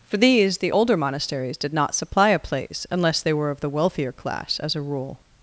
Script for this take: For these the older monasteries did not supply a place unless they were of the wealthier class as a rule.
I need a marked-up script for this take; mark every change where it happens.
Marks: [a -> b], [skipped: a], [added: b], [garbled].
For these the older monasteries did not supply a place unless they were of the wealthier class as a rule.